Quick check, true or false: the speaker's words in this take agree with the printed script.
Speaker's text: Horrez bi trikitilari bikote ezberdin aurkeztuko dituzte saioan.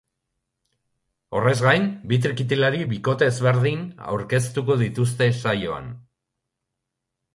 false